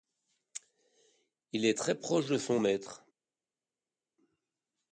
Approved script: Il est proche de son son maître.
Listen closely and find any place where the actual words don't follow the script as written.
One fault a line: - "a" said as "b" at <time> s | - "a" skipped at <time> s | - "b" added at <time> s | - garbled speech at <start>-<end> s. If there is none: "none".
- "très" added at 1.8 s
- "son" skipped at 2.6 s